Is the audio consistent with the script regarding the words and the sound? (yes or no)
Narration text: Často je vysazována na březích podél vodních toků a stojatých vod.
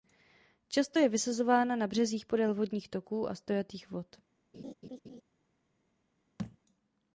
no